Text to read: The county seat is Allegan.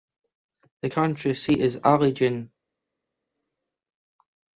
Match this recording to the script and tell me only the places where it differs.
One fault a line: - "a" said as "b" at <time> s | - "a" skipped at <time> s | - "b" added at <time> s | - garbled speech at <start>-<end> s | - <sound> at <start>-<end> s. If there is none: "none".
none